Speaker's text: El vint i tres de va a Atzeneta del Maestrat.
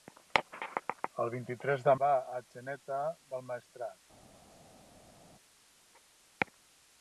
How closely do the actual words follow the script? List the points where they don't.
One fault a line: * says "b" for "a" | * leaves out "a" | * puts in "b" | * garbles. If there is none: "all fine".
all fine